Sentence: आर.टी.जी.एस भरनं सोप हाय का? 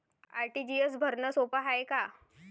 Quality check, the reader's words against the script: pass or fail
pass